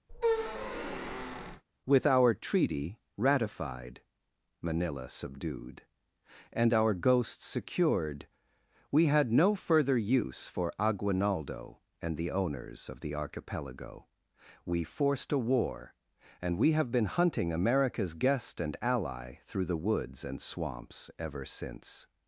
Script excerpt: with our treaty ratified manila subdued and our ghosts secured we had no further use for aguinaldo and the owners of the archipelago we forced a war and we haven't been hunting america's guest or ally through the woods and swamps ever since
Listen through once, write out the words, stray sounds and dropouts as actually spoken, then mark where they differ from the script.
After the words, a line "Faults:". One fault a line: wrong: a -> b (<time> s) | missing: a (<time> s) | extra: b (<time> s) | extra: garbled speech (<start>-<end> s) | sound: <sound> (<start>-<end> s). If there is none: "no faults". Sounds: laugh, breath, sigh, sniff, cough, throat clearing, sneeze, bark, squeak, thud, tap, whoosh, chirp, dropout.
with our treaty ratified manila subdued and our ghosts secured we had no further use for aguinaldo and the owners of the archipelago we forced a war and we have been hunting america's guest and ally through the woods and swamps ever since
Faults:
sound: squeak (0.1-1.6 s)
wrong: haven't -> have (16.7 s)
wrong: or -> and (18.6 s)